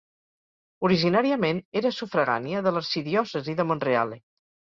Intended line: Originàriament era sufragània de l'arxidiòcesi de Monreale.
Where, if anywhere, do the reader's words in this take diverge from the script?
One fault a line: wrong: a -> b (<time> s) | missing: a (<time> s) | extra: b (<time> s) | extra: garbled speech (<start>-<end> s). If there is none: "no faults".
no faults